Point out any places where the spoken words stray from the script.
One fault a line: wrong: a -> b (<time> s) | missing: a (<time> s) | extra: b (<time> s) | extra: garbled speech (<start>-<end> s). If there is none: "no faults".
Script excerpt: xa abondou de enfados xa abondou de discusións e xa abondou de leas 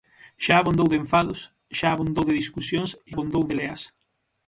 missing: xa (3.1 s)